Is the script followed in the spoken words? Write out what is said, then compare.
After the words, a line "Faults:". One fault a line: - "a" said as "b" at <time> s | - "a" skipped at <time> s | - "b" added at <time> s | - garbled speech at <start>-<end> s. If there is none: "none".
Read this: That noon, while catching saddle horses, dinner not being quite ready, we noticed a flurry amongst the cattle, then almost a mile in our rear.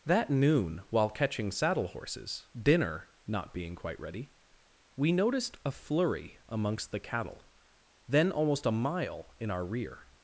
That noon, while catching saddle horses, dinner not being quite ready, we noticed a flurry amongst the cattle, then almost a mile in our rear.
Faults:
none